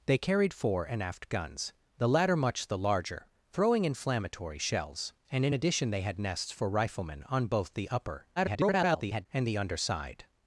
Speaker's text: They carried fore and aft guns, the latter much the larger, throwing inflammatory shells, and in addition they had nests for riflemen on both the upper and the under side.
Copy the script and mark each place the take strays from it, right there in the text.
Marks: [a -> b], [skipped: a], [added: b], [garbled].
They carried fore and aft guns, the latter much the larger, throwing inflammatory shells, and in addition they had nests for riflemen on both the upper [garbled] and the under side.